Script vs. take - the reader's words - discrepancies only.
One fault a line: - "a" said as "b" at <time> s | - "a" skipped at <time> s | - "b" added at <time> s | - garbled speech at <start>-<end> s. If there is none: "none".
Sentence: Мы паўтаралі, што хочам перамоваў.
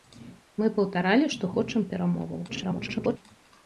- garbled speech at 2.5-3.2 s